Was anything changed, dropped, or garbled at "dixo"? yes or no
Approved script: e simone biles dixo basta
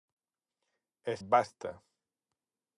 yes